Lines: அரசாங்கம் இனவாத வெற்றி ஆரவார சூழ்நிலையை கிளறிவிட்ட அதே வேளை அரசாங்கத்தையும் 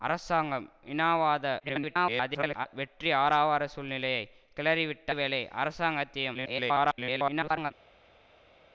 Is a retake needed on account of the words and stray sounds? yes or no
yes